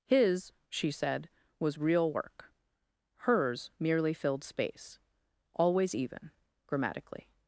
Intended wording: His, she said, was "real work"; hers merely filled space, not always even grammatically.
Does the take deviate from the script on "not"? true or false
true